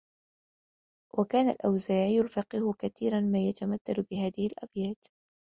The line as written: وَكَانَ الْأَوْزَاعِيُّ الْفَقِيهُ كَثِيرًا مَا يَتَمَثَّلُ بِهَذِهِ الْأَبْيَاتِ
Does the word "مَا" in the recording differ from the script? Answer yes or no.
no